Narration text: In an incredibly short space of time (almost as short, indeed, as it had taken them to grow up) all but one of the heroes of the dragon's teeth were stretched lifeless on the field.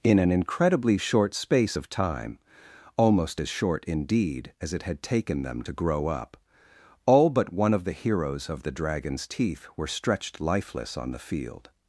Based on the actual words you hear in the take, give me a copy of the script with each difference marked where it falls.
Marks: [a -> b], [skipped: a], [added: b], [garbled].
In an incredibly short space of time (almost as short, indeed, as it had taken them to grow up) all but one of the heroes of the dragon's teeth were stretched lifeless on the field.